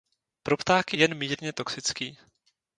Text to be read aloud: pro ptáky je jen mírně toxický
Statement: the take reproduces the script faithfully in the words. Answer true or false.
false